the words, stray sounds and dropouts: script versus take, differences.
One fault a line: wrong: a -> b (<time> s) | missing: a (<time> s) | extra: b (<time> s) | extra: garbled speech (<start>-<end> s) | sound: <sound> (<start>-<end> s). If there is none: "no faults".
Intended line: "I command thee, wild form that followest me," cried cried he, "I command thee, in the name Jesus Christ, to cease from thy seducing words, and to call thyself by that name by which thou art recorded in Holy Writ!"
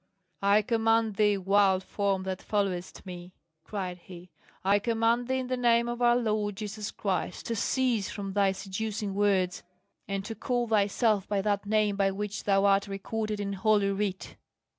missing: cried (4.0 s)
extra: of our Lord (5.9 s)